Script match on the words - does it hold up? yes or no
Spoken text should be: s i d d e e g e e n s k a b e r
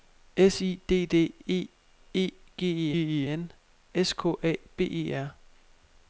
yes